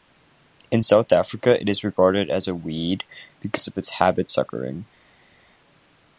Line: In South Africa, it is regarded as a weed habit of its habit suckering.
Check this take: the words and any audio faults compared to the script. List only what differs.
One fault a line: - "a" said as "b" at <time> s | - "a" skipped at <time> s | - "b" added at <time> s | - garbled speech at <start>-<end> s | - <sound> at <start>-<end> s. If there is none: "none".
- "habit" said as "because" at 3.4 s